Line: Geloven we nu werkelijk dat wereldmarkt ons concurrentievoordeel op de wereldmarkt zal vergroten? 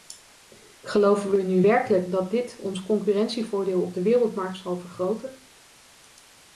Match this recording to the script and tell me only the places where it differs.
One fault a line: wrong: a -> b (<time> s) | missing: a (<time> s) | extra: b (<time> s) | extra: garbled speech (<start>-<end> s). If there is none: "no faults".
wrong: wereldmarkt -> dit (2.3 s)